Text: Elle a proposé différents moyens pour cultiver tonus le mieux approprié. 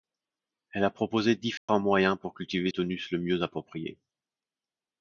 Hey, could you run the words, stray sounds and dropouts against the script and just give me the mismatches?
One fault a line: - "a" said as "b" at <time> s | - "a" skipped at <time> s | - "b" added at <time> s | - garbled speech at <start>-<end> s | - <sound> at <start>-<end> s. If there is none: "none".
- dropout at 1.6-1.7 s